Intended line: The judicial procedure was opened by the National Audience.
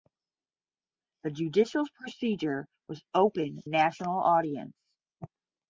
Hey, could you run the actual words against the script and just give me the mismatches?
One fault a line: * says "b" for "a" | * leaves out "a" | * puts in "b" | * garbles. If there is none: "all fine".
* leaves out "by the"